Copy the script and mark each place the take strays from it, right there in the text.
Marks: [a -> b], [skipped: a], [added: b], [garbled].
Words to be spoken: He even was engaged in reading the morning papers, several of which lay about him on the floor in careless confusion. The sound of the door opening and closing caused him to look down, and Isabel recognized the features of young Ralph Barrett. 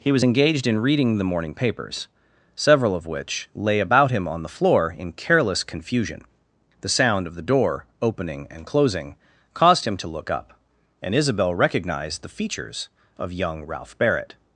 He [skipped: even] was engaged in reading the morning papers, several of which lay about him on the floor in careless confusion. The sound of the door opening and closing caused him to look [down, -> up] and Isabel recognized the features of young Ralph Barrett.